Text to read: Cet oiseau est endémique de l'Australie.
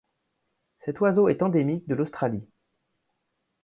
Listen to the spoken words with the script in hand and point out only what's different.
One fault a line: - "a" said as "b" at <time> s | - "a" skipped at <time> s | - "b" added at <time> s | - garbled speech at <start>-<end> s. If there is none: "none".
none